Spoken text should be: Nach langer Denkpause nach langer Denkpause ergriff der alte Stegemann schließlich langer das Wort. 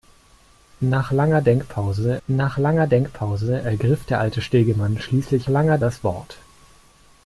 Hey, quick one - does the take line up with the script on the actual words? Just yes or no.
yes